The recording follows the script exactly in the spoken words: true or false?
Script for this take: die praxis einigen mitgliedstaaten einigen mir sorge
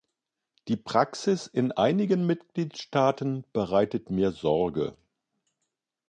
false